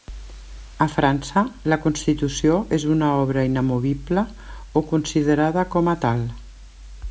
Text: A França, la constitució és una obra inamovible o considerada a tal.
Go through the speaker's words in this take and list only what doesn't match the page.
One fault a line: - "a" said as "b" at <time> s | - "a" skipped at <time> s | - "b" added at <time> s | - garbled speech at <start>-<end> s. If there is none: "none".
- "com" added at 5.8 s